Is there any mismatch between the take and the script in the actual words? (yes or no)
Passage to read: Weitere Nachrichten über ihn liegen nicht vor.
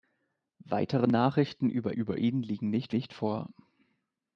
yes